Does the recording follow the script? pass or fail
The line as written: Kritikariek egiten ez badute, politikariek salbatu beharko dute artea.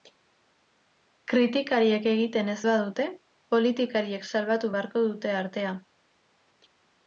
pass